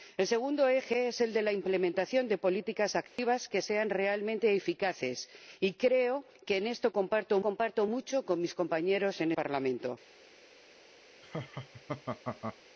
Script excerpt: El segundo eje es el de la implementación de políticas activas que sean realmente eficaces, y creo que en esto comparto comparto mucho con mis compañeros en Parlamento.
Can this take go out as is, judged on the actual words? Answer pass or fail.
pass